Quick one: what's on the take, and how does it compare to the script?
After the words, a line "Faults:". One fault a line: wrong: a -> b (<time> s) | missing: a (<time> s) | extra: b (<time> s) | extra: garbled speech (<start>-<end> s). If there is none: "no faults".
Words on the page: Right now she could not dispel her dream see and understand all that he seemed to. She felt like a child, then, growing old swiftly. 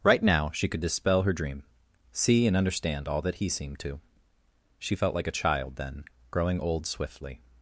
Right now she could dispel her dream see and understand all that he seemed to. She felt like a child, then, growing old swiftly.
Faults:
missing: not (0.8 s)